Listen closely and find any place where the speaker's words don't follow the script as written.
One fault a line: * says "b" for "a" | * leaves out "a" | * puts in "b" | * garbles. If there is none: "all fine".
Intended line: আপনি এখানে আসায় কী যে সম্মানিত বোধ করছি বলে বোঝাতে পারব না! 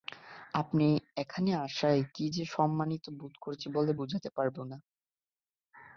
all fine